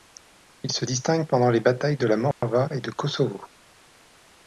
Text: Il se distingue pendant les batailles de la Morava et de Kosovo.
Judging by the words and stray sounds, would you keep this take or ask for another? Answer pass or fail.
fail